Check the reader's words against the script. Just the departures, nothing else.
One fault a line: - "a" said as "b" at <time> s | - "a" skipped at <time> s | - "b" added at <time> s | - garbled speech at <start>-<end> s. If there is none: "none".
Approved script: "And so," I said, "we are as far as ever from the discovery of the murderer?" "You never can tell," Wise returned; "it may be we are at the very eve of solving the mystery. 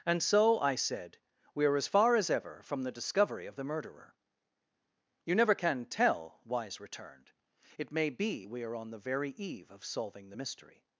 - "at" said as "on" at 8.7 s